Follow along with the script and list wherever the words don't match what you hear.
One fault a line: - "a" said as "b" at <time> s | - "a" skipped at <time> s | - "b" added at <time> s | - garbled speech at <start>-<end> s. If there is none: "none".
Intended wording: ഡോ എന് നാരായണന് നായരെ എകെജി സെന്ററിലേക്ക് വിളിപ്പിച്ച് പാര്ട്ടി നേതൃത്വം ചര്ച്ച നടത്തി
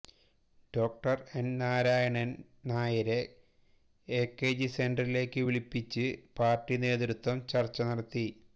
none